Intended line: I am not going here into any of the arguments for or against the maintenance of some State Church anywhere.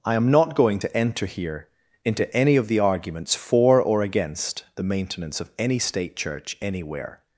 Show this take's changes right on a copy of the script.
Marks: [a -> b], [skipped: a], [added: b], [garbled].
I am not going [added: to enter] here into any of the arguments for or against the maintenance of [some -> any] State Church anywhere.